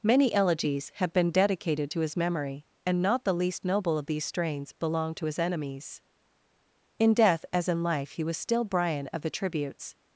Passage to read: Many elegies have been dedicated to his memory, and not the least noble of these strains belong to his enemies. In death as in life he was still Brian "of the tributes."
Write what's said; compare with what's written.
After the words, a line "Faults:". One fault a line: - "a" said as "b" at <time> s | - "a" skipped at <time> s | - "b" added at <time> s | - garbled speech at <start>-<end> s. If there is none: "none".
Many elegies have been dedicated to his memory, and not the least noble of these strains belong to his enemies. In death as in life he was still Brian "of the tributes."
Faults:
none